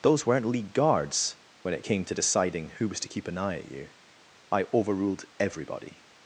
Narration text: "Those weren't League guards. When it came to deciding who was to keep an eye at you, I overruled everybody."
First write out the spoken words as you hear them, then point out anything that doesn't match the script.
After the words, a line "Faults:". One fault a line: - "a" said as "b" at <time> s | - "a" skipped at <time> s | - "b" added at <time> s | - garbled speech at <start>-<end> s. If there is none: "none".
"Those weren't League guards. When it came to deciding who was to keep an eye at you, I overruled everybody."
Faults:
none